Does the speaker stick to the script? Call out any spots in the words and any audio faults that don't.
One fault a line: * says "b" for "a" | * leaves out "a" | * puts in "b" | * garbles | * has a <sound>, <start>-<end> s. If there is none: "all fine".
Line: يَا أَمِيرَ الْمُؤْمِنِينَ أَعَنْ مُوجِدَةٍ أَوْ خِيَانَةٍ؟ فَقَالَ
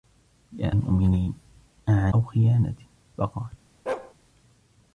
* leaves out "أَمِيرَ"
* leaves out "مُوجِدَةٍ"
* has a bark, 3.9-4.1 s